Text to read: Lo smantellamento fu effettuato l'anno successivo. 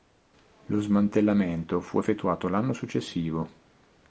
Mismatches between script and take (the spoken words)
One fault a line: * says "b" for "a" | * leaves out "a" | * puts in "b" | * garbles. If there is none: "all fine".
all fine